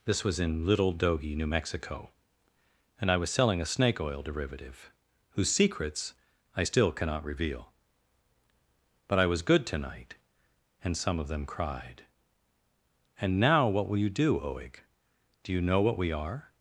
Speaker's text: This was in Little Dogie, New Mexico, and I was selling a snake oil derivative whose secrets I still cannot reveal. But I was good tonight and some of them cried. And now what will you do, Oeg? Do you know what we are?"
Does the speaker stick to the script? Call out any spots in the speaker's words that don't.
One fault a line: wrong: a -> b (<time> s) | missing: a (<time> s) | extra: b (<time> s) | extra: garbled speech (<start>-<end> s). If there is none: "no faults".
no faults